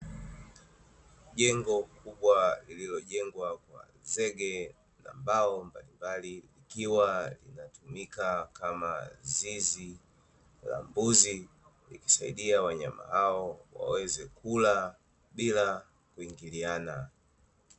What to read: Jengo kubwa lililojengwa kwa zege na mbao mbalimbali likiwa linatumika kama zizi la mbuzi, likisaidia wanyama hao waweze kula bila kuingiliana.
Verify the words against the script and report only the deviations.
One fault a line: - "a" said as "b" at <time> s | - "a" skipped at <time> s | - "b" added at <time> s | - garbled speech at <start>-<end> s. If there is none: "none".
none